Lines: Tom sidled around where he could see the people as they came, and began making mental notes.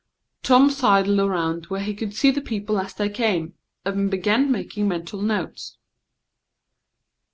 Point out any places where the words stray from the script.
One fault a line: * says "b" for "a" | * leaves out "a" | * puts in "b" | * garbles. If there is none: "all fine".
all fine